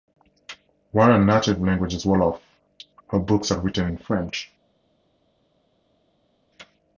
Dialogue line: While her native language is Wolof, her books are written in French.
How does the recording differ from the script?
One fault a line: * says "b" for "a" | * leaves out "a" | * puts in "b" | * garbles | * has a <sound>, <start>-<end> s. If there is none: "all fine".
all fine